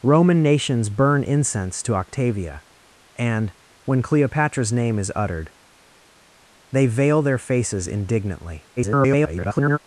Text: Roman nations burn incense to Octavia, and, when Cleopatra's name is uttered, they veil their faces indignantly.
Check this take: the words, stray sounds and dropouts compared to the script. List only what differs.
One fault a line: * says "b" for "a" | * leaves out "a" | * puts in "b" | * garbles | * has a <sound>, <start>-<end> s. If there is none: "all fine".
* garbles